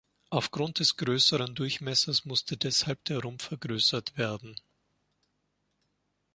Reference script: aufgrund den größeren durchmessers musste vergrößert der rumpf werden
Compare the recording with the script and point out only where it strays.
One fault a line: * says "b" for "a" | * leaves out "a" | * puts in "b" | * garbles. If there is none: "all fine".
* says "des" for "den"
* says "deshalb" for "vergrößert"
* puts in "vergrößert"